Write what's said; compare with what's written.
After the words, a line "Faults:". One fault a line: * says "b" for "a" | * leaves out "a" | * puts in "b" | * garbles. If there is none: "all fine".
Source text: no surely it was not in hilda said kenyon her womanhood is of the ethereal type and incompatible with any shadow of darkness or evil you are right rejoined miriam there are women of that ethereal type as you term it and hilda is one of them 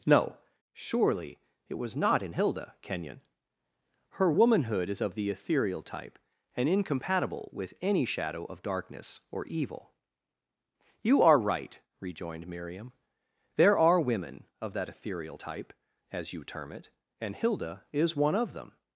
no surely it was not in hilda kenyon her womanhood is of the ethereal type and incompatible with any shadow of darkness or evil you are right rejoined miriam there are women of that ethereal type as you term it and hilda is one of them
Faults:
* leaves out "said"